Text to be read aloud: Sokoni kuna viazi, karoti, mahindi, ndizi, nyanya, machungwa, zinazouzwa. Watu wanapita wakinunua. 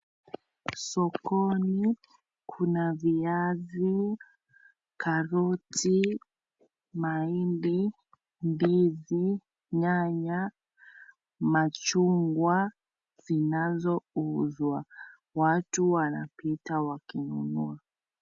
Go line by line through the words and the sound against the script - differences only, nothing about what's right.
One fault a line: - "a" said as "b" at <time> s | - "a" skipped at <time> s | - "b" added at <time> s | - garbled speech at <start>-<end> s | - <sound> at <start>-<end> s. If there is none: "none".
none